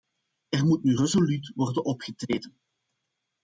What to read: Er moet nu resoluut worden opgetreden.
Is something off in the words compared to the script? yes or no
no